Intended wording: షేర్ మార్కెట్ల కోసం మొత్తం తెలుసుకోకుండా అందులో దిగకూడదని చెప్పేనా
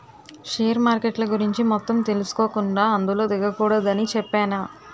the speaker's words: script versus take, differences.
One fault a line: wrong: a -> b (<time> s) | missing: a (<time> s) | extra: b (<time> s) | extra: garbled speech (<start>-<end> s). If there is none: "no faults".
wrong: కోసం -> గురించి (1.2 s)